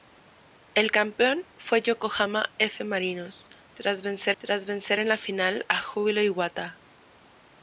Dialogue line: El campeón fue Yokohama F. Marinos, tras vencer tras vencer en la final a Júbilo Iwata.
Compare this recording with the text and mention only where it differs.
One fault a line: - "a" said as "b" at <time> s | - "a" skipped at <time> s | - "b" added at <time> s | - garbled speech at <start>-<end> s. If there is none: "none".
none